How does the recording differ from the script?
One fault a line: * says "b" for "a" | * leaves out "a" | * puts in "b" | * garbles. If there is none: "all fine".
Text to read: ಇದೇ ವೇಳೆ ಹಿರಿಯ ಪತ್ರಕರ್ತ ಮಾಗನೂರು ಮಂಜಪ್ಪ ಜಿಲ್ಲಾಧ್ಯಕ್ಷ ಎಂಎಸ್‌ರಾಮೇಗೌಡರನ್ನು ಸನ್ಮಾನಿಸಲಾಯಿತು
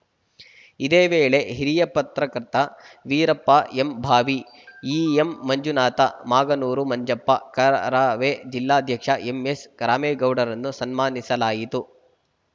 * puts in "ವೀರಪ್ಪ ಎಂಭಾವಿ ಇಎಂಮಂಜುನಾಥ"
* puts in "ಕರವೇ"